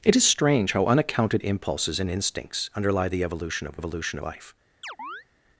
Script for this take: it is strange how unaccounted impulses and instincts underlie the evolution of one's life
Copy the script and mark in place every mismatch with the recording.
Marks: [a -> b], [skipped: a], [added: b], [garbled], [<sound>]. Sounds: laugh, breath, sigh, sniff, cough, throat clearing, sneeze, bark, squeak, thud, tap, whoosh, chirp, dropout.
it is strange how unaccounted impulses and instincts underlie the evolution of [one's -> evolution] life [chirp]